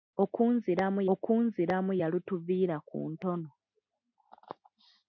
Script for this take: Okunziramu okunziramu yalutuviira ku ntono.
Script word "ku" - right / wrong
right